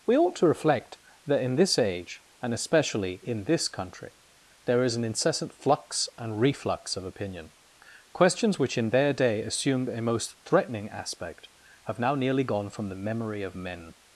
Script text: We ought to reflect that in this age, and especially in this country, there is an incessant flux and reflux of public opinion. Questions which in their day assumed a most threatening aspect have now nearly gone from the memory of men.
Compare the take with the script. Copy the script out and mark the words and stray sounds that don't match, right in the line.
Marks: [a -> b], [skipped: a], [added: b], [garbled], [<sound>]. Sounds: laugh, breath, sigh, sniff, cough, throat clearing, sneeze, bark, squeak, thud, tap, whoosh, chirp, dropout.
We ought to reflect that in this age, and especially in this country, there is an incessant flux and reflux of [skipped: public] opinion. Questions which in their day assumed a most threatening aspect have now nearly gone from the memory of men.